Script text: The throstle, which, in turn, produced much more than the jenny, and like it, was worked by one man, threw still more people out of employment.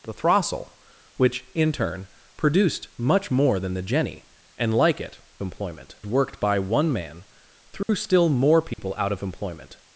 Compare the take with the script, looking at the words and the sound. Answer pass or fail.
fail